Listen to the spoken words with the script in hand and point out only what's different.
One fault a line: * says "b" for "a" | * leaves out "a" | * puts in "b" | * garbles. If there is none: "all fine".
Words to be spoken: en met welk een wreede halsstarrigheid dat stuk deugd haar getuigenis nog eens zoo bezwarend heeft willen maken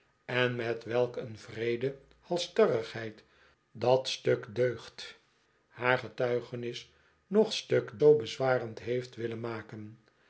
* says "stuk" for "eens"